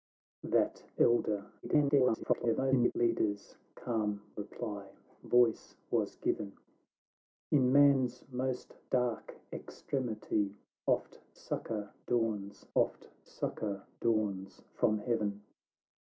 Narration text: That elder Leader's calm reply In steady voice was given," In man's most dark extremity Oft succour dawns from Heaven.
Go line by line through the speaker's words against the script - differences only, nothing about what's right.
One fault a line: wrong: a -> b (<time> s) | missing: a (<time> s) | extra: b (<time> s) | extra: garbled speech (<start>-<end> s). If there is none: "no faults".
extra: garbled speech (1.6-2.9 s)
missing: In steady (5.0 s)
extra: Oft succour dawns (12.7 s)